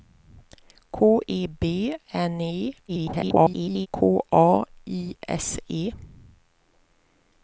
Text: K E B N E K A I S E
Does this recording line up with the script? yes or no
no